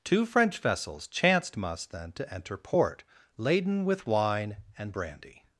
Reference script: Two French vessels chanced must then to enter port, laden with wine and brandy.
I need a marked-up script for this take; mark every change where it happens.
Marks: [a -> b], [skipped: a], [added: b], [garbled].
Two French vessels chanced must then to enter port, laden with wine and brandy.